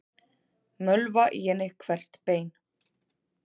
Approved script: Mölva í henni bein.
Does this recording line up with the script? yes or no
no